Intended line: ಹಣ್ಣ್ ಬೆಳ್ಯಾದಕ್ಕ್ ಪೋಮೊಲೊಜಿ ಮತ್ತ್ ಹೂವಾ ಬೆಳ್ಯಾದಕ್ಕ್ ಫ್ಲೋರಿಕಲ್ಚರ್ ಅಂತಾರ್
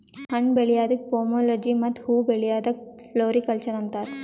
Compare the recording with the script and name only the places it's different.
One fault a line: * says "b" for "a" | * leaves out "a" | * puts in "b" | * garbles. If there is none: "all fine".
all fine